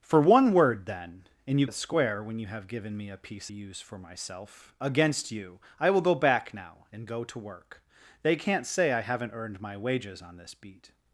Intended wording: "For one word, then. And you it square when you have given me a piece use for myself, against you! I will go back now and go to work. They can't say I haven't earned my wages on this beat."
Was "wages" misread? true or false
false